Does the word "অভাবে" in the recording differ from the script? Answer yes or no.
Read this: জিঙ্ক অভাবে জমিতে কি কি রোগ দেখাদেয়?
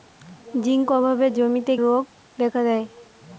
no